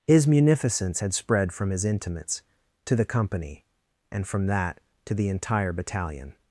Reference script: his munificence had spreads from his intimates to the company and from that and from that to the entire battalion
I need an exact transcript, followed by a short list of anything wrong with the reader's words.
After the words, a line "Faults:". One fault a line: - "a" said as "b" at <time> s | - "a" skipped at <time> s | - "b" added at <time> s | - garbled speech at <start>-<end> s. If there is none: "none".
his munificence had spread from his intimates to the company and from that to the entire battalion
Faults:
- "spreads" said as "spread" at 1.1 s
- "and from that" skipped at 4.8 s